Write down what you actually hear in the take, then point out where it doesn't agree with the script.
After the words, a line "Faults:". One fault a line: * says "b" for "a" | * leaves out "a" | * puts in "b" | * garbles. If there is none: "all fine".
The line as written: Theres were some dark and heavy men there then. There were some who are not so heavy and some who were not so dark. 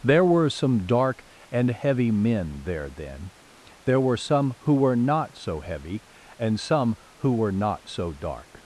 There were some dark and heavy men there then. There were some who were not so heavy and some who were not so dark.
Faults:
* says "There" for "Theres"
* says "were" for "are"